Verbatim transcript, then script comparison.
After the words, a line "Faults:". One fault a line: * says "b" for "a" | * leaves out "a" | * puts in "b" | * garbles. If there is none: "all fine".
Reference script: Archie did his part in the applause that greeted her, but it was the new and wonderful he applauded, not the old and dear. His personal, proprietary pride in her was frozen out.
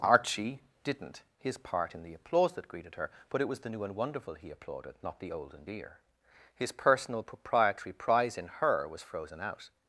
Archie didn't his part in the applause that greeted her, but it was the new and wonderful he applauded, not the old and dear. His personal, proprietary prize in her was frozen out.
Faults:
* says "didn't" for "did"
* says "prize" for "pride"